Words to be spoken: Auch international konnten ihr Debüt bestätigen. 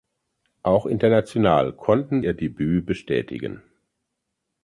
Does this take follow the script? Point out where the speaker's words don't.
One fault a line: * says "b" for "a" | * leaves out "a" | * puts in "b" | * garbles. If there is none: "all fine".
all fine